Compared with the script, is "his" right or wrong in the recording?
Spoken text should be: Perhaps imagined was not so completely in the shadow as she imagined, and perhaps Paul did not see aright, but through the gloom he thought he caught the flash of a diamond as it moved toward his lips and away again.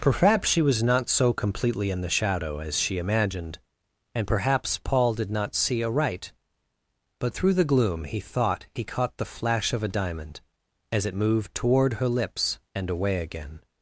wrong